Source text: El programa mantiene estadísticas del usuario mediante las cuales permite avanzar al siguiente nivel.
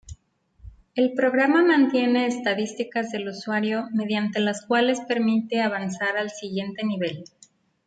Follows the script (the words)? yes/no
yes